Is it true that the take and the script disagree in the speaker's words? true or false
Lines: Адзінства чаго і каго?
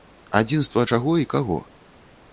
false